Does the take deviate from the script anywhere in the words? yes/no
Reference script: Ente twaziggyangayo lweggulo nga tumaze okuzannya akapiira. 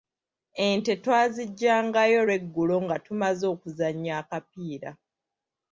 no